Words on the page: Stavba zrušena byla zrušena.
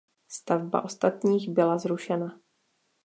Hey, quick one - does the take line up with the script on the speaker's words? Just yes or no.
no